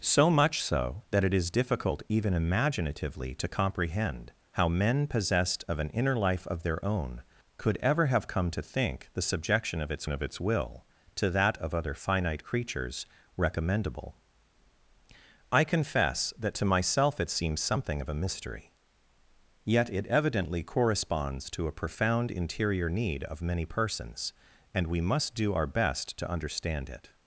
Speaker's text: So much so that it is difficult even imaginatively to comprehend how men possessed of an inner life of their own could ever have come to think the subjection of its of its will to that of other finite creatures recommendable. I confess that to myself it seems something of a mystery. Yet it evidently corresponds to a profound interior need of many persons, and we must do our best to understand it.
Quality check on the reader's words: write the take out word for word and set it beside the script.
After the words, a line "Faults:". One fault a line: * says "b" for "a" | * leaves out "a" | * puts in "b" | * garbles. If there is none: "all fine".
So much so that it is difficult even imaginatively to comprehend how men possessed of an inner life of their own could ever have come to think the subjection of its of its will to that of other finite creatures recommendable. I confess that to myself it seems something of a mystery. Yet it evidently corresponds to a profound interior need of many persons, and we must do our best to understand it.
Faults:
all fine